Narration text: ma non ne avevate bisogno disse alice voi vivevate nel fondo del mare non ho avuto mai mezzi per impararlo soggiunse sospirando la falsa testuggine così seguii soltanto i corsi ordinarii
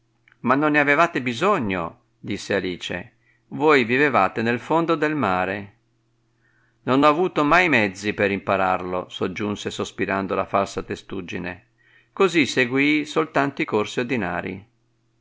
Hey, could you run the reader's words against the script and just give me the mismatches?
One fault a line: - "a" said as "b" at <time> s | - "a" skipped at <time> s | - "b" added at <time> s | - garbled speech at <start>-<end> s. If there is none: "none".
none